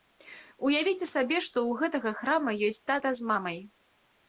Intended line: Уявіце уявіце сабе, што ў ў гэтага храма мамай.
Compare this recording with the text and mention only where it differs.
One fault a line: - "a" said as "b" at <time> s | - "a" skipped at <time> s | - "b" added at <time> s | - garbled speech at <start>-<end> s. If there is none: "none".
- "уявіце" skipped at 1.1 s
- "ў" skipped at 1.8 s
- "ёсць тата з" added at 2.7 s